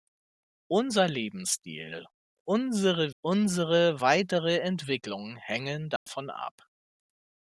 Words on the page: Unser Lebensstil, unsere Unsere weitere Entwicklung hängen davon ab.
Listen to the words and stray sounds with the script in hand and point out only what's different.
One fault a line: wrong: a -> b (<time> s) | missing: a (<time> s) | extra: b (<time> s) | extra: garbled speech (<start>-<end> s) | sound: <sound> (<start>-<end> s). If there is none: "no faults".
sound: dropout (6.0-6.1 s)